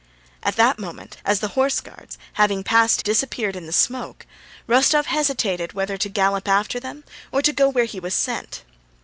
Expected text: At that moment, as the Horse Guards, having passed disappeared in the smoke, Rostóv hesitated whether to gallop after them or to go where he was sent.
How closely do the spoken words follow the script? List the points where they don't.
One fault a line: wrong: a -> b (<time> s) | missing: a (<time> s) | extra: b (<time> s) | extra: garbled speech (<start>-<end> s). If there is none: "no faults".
no faults